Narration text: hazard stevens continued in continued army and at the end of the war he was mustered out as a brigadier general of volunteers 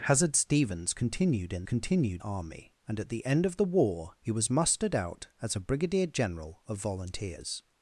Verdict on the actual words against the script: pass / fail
pass